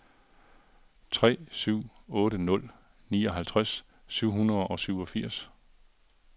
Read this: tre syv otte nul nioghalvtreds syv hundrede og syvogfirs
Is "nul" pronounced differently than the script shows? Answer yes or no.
no